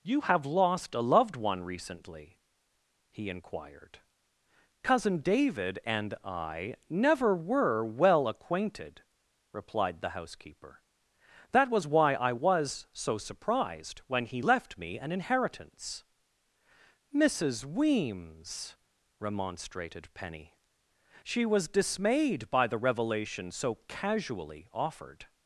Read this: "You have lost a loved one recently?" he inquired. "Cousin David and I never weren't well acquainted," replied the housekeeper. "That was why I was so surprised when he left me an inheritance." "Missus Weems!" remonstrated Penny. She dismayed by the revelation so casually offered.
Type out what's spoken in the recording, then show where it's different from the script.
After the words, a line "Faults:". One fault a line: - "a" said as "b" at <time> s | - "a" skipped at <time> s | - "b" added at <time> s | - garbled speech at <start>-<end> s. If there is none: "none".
"You have lost a loved one recently?" he inquired. "Cousin David and I never were well acquainted," replied the housekeeper. "That was why I was so surprised when he left me an inheritance." "Missus Weems!" remonstrated Penny. She was dismayed by the revelation so casually offered.
Faults:
- "weren't" said as "were" at 7.3 s
- "was" added at 21.4 s